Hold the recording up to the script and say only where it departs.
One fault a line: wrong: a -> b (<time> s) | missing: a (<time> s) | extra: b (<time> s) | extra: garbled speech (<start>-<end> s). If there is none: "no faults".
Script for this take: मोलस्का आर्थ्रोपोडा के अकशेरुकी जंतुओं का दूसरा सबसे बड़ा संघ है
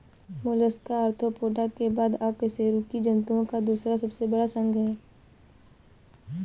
extra: बाद (1.9 s)